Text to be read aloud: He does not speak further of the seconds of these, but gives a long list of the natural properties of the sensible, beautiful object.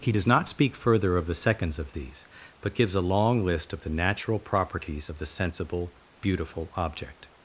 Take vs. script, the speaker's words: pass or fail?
pass